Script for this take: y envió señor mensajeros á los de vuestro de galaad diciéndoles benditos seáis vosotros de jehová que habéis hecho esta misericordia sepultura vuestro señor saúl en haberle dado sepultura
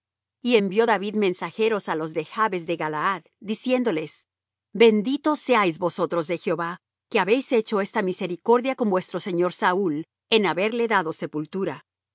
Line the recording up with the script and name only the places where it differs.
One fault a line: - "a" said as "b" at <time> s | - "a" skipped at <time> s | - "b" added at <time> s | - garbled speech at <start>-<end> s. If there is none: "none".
- "señor" said as "david" at 0.9 s
- "vuestro" said as "jabes" at 2.3 s
- "sepultura" said as "con" at 8.8 s